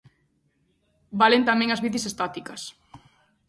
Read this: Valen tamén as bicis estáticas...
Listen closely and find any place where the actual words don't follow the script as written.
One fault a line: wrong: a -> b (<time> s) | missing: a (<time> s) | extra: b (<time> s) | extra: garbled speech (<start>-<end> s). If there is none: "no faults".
no faults